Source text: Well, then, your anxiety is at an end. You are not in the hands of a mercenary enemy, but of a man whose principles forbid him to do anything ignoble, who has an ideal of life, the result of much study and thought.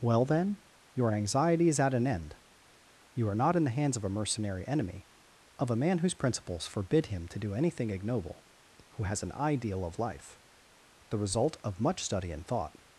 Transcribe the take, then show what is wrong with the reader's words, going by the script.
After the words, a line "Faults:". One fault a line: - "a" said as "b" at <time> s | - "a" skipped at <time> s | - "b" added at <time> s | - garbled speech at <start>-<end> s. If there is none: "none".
Well, then, your anxiety is at an end. You are not in the hands of a mercenary enemy, of a man whose principles forbid him to do anything ignoble, who has an ideal of life, the result of much study and thought.
Faults:
- "but" skipped at 5.0 s